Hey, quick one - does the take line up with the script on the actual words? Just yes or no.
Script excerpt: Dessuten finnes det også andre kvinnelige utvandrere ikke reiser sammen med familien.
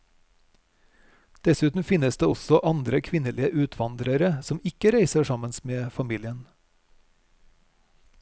no